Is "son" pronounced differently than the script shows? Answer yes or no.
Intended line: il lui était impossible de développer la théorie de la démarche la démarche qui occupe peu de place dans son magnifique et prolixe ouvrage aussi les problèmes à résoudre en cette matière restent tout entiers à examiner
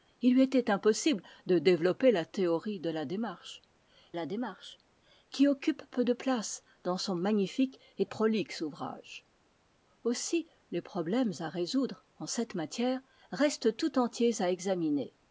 no